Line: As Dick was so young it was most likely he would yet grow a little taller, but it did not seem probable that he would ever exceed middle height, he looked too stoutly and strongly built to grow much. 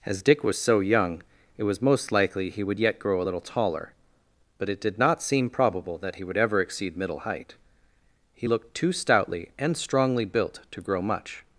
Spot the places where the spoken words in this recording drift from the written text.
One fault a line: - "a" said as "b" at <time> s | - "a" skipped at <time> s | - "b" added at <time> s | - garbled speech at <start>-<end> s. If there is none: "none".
none